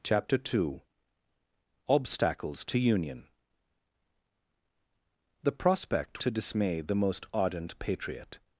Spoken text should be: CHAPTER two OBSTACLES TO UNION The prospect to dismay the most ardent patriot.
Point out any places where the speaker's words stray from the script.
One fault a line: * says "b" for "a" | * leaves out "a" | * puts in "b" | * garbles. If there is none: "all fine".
all fine